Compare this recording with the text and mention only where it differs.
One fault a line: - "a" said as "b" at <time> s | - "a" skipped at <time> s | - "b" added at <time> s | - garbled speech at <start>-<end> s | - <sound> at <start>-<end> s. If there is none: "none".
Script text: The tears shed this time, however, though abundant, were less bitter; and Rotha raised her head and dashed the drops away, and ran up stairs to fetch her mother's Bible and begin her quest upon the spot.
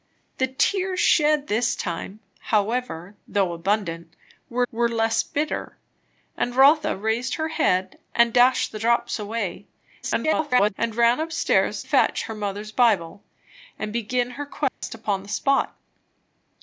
- "were" added at 4.7 s
- garbled speech at 10.0-10.7 s
- "to" skipped at 11.8 s
- dropout at 14.7-14.8 s